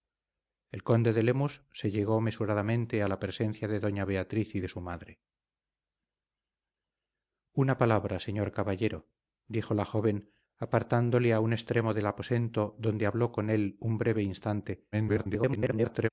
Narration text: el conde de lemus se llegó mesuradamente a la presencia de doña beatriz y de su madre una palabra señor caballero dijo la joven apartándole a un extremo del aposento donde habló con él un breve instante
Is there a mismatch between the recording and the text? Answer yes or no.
yes